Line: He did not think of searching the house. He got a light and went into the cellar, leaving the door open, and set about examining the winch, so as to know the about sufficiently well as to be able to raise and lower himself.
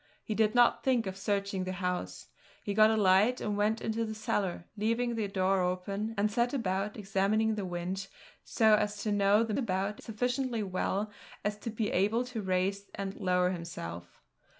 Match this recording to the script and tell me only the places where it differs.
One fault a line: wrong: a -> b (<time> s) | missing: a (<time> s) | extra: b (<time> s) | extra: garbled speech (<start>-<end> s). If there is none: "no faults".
no faults